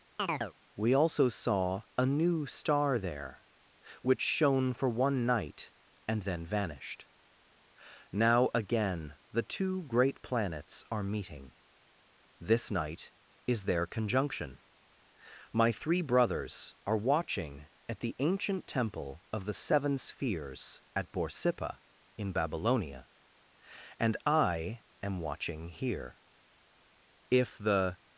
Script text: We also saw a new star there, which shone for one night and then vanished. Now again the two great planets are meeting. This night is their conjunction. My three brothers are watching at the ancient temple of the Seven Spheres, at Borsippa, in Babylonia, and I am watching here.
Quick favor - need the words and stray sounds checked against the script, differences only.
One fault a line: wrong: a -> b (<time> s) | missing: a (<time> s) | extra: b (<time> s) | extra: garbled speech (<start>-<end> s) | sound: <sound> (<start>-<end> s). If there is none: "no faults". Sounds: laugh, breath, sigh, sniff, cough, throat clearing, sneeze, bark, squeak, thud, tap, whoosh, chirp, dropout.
sound: chirp (0.2-0.5 s)
extra: If the (27.3 s)